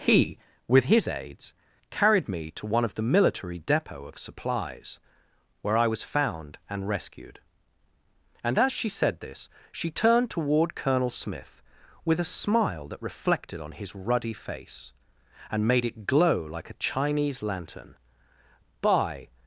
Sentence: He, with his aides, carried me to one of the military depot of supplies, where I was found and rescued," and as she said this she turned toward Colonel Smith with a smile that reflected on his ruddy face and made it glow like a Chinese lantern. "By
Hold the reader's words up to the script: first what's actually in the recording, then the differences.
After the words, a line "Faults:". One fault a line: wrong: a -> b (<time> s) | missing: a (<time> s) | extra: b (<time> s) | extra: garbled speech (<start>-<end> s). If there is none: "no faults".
He, with his aides, carried me to one of the military depot of supplies, where I was found and rescued," and as she said this she turned toward Colonel Smith with a smile that reflected on his ruddy face and made it glow like a Chinese lantern. "By
Faults:
no faults